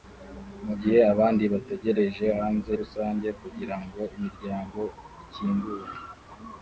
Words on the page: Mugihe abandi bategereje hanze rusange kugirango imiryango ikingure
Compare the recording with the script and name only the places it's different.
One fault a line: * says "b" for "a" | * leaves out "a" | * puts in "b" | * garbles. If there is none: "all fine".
all fine